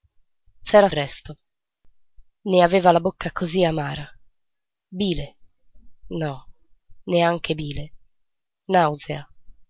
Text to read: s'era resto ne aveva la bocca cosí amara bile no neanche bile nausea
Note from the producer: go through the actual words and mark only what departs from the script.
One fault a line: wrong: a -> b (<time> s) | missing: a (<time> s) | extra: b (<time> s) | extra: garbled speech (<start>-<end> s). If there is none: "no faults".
no faults